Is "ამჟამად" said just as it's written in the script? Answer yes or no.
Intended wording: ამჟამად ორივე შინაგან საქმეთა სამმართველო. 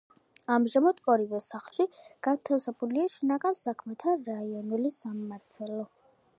yes